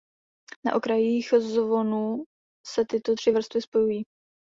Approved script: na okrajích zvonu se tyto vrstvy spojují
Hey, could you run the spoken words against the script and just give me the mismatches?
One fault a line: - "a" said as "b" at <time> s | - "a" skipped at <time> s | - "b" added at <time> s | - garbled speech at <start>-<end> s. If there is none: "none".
- "tři" added at 3.1 s